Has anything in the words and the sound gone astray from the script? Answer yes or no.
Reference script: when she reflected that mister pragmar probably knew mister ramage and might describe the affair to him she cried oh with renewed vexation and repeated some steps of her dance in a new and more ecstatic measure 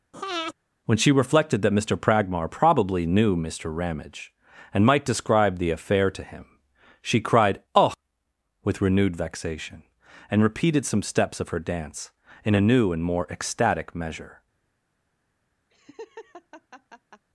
yes